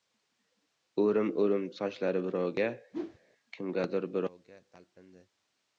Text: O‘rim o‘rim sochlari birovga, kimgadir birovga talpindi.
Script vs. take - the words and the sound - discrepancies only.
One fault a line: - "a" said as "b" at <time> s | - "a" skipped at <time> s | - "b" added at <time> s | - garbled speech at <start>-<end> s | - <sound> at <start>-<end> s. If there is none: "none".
- whoosh at 2.9-3.2 s